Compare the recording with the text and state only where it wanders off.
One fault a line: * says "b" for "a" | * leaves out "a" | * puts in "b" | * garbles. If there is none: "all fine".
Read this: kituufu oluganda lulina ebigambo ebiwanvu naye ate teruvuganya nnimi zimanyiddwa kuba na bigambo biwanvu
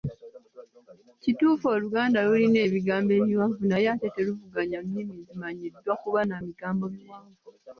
all fine